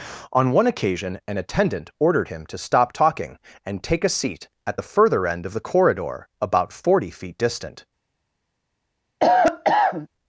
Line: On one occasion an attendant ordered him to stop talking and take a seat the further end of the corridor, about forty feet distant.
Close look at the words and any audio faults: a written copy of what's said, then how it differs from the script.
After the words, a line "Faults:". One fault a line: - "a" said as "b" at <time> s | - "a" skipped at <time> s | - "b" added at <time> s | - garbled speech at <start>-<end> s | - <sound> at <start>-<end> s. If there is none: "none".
On one occasion an attendant ordered him to stop talking and take a seat at the further end of the corridor, about forty feet distant.
Faults:
- "at" added at 4.6 s
- cough at 9.2-10.1 s